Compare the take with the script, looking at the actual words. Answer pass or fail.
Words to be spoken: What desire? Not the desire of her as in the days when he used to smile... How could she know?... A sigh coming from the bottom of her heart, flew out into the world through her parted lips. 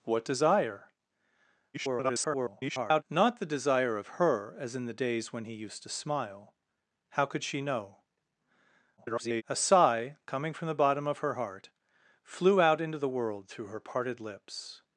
fail